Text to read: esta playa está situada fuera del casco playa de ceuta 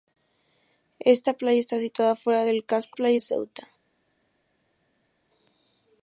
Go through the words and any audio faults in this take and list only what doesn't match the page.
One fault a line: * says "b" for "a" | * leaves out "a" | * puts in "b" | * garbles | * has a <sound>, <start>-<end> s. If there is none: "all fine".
all fine